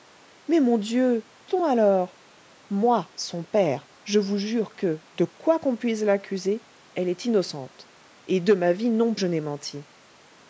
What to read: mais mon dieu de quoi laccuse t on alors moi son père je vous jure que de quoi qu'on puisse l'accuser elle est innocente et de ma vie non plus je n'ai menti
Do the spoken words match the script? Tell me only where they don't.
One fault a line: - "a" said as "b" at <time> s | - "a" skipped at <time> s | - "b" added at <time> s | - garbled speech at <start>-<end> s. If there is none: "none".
- "de quoi laccuse" skipped at 1.3 s
- "plus" skipped at 9.1 s